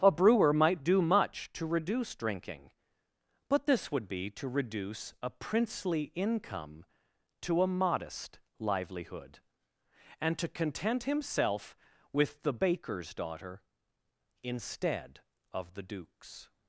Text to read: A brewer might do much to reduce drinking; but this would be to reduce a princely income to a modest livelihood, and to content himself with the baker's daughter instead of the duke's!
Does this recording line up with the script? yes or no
yes